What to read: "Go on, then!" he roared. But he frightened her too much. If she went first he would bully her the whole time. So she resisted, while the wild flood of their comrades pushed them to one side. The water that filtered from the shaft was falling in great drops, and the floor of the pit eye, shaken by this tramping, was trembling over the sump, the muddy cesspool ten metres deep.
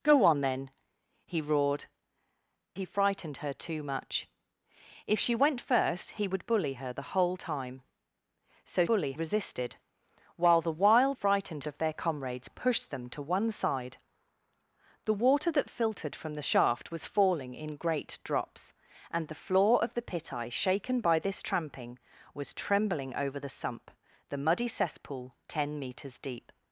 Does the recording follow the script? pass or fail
fail